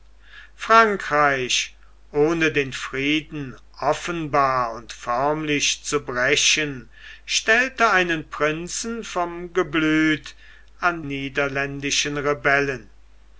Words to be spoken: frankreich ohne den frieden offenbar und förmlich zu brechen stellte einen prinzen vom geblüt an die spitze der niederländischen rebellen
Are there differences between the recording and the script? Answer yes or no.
yes